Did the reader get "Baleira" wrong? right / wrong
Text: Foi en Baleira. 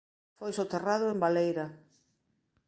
right